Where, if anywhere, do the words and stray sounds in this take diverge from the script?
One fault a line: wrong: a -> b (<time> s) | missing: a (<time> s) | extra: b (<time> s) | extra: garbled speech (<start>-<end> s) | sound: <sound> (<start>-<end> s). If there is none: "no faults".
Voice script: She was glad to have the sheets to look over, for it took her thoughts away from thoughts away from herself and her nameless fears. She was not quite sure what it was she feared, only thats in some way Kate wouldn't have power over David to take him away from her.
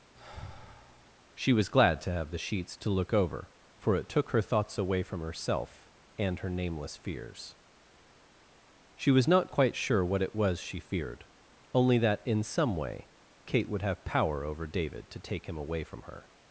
sound: sigh (0.1-1.2 s)
missing: thoughts away from (5.2 s)
wrong: thats -> that (12.0 s)
wrong: wouldn't -> would (13.7 s)